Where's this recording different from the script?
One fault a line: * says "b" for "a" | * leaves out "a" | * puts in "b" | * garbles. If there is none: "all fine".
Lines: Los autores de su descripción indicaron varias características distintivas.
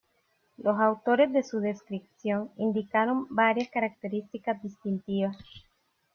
all fine